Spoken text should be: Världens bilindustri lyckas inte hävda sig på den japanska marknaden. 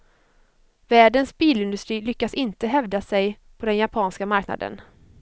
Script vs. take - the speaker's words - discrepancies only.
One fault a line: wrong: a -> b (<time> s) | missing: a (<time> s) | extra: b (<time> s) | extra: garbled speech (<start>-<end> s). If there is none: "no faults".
no faults